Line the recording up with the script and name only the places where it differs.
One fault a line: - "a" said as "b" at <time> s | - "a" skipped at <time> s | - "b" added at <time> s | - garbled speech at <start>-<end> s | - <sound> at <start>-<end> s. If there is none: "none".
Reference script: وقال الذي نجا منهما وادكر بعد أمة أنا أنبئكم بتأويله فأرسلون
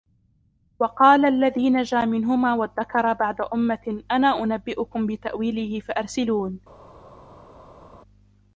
none